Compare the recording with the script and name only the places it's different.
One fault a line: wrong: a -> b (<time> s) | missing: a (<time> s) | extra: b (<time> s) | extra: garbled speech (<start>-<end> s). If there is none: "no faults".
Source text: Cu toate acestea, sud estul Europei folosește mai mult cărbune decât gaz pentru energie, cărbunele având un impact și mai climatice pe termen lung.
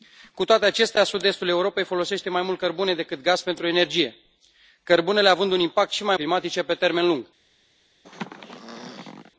no faults